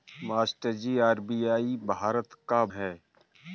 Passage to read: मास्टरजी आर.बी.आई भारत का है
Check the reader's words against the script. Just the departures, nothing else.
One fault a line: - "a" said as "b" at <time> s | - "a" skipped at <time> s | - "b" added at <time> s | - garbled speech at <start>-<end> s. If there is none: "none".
none